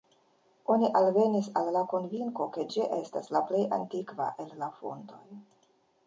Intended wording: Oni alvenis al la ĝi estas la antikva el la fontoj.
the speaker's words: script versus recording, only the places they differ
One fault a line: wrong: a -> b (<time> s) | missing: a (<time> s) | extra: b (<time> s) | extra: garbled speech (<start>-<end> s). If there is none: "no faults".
extra: konvinko ke (1.9 s)
extra: plej (3.5 s)